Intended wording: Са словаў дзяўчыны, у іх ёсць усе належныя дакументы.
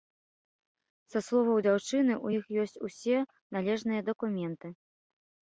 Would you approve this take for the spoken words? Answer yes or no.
yes